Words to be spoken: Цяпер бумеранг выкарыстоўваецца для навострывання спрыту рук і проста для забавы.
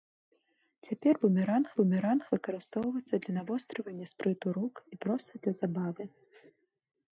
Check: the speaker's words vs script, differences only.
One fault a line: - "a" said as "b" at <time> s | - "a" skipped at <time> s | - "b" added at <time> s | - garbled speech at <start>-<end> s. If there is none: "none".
- "бумеранг" added at 1.8 s